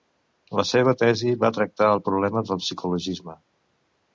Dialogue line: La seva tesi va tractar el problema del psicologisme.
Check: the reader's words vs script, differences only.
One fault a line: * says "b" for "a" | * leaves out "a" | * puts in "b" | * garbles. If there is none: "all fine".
all fine